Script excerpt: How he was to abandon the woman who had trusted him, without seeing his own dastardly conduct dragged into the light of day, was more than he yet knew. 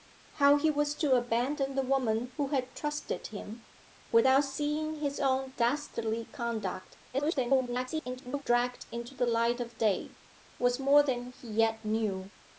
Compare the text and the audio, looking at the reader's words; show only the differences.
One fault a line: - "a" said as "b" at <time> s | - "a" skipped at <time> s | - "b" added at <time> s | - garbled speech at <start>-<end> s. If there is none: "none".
- garbled speech at 7.1-8.4 s